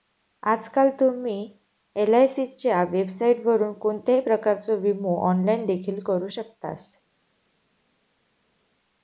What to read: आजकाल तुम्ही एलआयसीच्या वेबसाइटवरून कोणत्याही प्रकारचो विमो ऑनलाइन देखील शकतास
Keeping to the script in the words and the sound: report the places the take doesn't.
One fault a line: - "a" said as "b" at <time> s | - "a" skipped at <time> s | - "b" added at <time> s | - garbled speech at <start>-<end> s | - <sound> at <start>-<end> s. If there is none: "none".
- "करू" added at 6.0 s